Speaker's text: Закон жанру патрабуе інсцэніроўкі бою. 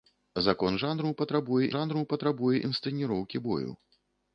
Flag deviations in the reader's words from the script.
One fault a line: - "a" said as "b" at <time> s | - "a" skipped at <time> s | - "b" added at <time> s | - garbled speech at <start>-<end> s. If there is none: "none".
- "жанру патрабуе" added at 1.7 s